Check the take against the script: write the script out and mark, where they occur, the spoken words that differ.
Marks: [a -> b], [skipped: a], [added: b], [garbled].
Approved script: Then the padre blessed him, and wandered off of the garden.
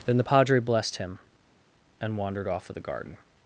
Then the padre blessed him, and wandered off of the garden.